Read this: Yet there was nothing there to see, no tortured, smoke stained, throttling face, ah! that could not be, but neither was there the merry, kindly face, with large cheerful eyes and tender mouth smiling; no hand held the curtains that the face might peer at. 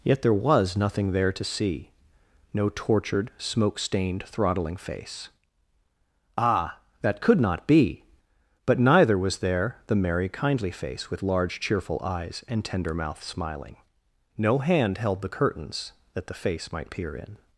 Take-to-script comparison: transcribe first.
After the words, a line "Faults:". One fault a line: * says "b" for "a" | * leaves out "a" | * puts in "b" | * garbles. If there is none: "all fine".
Yet there was nothing there to see, no tortured, smoke stained, throttling face, ah! that could not be, but neither was there the merry, kindly face, with large cheerful eyes and tender mouth smiling; no hand held the curtains that the face might peer in.
Faults:
* says "in" for "at"